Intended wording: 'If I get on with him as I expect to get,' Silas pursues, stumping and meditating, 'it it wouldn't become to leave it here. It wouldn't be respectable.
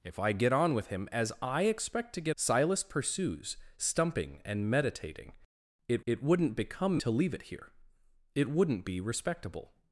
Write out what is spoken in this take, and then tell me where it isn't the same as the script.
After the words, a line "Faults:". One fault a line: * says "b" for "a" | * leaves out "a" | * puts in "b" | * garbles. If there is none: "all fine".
'If I get on with him as I expect to get,' Silas pursues, stumping and meditating, 'it it wouldn't become to leave it here. It wouldn't be respectable.
Faults:
all fine